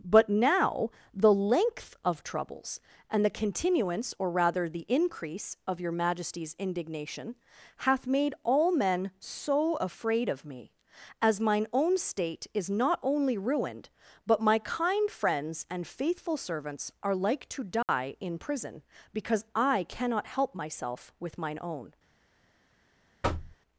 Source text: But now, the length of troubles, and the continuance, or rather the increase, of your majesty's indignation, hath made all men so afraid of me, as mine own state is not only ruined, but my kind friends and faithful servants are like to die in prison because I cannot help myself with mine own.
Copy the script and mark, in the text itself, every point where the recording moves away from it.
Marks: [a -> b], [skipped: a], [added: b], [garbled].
But now, the length of troubles, and the continuance, or rather the increase, of your majesty's indignation, hath made all men so afraid of me, as mine own state is not only ruined, but my kind friends and faithful servants are like to die in prison because I cannot help myself with mine own.